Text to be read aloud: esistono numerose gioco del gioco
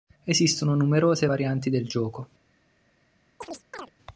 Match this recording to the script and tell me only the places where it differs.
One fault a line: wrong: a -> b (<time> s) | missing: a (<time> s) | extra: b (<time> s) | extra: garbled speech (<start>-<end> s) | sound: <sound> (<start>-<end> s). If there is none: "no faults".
wrong: gioco -> varianti (1.2 s)
sound: chirp (3.4-3.9 s)